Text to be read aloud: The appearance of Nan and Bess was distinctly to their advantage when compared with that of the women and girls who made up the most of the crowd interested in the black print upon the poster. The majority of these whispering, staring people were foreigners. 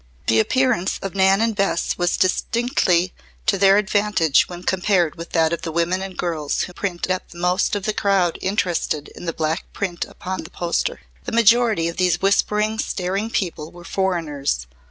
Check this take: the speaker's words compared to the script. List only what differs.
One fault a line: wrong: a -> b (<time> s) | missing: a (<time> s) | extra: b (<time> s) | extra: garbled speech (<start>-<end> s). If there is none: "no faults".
wrong: made -> print (6.7 s)